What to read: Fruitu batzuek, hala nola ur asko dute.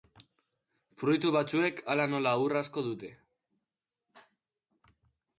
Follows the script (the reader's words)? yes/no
yes